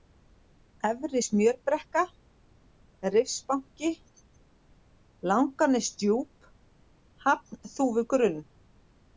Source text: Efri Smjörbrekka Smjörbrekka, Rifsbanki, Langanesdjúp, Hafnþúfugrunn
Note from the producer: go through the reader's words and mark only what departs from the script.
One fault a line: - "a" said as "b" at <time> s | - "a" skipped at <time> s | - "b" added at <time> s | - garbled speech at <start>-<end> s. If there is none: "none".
- "Smjörbrekka" skipped at 2.0 s